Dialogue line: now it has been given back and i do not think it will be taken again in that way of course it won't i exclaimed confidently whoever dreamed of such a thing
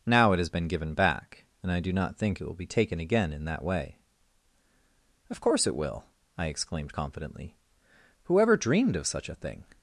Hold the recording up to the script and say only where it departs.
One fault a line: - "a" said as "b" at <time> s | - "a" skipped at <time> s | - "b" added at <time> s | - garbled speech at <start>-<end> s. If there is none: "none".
- "won't" said as "will" at 5.8 s